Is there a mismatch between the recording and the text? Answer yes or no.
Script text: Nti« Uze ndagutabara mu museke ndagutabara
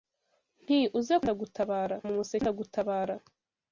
no